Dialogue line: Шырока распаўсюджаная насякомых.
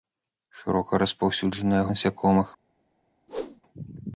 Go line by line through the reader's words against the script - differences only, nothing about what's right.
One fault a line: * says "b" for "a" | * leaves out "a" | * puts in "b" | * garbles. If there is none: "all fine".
all fine